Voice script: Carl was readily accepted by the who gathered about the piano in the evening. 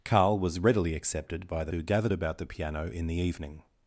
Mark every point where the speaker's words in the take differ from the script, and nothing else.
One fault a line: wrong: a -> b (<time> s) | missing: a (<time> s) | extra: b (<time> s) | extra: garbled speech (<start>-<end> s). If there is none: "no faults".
no faults